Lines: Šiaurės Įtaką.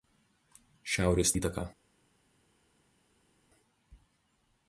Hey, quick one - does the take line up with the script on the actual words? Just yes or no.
yes